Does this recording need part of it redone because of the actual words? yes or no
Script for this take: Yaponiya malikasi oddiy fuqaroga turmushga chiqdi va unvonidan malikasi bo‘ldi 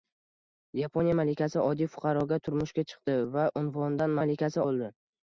no